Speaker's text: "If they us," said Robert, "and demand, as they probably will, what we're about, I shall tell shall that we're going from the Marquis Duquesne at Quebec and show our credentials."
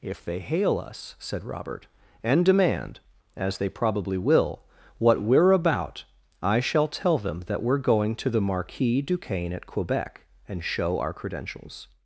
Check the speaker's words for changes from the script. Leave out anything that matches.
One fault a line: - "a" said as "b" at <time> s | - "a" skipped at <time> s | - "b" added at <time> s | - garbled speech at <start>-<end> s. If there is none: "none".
- "hail" added at 0.4 s
- "shall" said as "them" at 7.2 s
- "from" said as "to" at 8.2 s